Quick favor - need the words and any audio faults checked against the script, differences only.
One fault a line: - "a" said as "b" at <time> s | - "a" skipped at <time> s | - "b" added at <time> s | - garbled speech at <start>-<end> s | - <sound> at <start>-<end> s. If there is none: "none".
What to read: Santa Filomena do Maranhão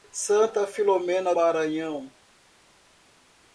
- "do" skipped at 1.4 s